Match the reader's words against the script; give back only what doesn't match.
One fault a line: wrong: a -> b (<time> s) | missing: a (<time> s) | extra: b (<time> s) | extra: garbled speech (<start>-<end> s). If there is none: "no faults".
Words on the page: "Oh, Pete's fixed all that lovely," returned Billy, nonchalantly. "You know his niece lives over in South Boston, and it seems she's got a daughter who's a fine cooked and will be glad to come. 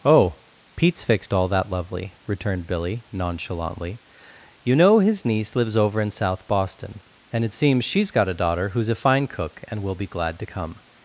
wrong: cooked -> cook (9.3 s)